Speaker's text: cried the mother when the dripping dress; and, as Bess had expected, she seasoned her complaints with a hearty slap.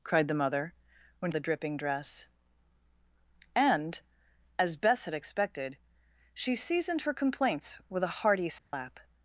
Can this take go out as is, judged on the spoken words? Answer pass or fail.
pass